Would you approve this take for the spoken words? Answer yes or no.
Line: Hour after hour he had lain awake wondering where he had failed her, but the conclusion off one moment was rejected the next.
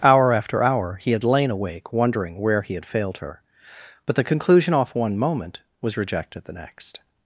yes